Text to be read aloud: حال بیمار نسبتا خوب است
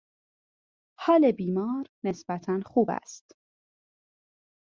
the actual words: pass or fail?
pass